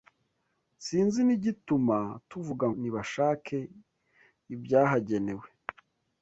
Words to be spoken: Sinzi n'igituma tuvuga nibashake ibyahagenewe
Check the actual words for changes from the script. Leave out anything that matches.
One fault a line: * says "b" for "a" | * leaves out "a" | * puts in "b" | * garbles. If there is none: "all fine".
all fine